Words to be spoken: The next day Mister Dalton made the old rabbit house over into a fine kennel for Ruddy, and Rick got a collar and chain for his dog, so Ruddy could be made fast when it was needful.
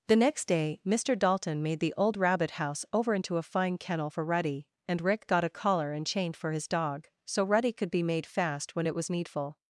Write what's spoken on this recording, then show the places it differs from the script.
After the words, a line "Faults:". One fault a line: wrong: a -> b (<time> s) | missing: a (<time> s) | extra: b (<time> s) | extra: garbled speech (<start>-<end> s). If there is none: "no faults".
The next day Mister Dalton made the old rabbit house over into a fine kennel for Ruddy, and Rick got a collar and chain for his dog, so Ruddy could be made fast when it was needful.
Faults:
no faults